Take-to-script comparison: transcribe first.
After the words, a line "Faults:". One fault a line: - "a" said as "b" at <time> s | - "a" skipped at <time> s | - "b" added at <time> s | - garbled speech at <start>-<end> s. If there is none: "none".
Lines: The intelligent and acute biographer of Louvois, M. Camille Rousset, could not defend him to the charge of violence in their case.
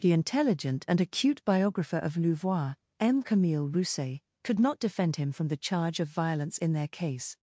The intelligent and acute biographer of Louvois, M. Camille Rousset, could not defend him from the charge of violence in their case.
Faults:
- "to" said as "from" at 5.3 s